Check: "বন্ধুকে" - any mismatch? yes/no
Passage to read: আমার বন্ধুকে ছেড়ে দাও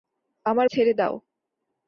yes